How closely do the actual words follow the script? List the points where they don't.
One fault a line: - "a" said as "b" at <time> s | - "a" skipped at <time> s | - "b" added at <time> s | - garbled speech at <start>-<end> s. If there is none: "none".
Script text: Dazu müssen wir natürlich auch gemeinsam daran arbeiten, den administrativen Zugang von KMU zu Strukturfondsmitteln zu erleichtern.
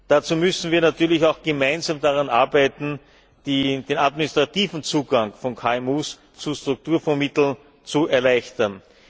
none